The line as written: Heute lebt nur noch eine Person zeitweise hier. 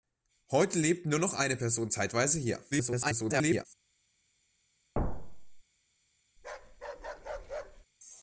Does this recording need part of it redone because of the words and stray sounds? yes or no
yes